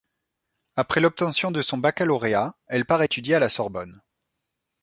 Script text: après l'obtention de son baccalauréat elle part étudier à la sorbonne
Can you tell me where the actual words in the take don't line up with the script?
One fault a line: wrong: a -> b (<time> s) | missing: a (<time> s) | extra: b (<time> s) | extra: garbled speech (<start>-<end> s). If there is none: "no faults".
no faults